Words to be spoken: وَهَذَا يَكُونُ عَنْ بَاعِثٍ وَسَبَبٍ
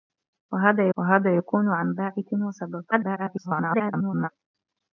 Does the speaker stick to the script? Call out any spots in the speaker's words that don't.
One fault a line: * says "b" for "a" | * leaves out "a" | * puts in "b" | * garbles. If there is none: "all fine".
* puts in "وَهَذَا"
* garbles